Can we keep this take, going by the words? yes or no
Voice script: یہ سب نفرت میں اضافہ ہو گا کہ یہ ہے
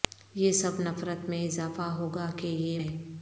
yes